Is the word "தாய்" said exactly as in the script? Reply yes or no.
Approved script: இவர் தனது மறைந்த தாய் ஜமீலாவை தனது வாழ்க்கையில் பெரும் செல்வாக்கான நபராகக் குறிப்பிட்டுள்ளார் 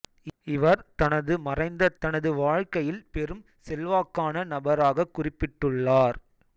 no